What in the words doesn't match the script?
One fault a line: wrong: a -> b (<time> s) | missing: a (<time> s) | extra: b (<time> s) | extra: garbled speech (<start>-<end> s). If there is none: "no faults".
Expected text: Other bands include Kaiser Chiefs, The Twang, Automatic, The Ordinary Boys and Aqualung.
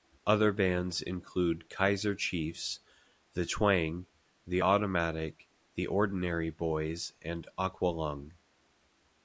extra: The (4.5 s)